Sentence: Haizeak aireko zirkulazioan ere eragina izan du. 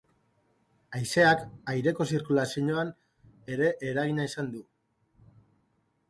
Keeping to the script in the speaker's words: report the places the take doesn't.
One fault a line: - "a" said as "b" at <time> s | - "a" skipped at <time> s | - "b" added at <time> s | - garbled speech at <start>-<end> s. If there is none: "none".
none